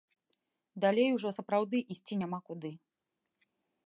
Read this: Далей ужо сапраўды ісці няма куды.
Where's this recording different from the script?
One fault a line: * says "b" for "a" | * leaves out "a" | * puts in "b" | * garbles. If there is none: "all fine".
all fine